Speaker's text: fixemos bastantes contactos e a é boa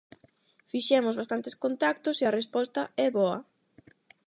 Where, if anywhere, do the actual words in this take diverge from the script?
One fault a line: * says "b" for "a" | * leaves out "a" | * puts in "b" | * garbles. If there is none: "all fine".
* puts in "resposta"